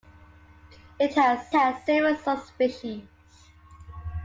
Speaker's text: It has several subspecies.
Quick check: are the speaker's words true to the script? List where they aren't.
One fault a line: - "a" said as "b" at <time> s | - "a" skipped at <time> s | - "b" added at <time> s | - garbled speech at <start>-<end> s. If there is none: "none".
- "has" added at 1.5 s